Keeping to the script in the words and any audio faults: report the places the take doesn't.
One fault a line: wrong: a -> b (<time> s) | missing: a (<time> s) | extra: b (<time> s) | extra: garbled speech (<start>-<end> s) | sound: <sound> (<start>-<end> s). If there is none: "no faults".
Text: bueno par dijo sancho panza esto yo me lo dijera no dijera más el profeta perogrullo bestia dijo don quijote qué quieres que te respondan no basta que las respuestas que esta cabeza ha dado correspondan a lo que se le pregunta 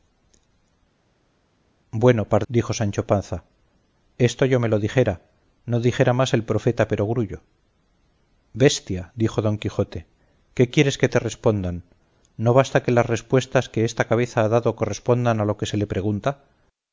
no faults